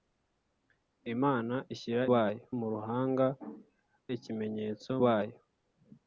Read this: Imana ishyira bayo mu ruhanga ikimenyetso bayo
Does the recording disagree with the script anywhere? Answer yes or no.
no